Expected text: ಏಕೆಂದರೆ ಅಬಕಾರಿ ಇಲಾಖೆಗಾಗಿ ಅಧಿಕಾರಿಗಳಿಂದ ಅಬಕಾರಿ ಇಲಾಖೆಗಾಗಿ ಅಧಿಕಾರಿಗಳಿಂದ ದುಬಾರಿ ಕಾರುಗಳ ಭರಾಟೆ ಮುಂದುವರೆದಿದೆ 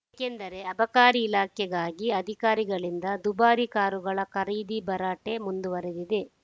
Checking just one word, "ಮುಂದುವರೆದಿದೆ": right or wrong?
right